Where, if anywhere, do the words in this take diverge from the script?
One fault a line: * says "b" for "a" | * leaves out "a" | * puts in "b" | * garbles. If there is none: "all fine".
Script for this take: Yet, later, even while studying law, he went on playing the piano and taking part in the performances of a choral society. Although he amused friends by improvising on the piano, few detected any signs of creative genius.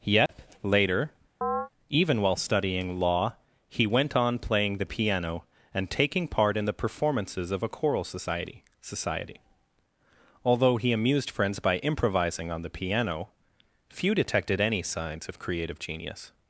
* puts in "society"